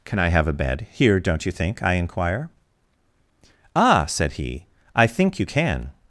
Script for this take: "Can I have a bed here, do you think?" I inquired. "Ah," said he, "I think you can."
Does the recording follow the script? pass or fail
fail